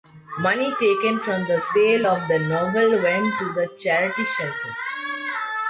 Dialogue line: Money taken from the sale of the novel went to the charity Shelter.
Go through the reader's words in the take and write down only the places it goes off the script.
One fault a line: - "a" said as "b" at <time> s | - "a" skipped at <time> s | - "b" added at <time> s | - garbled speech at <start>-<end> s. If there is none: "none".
none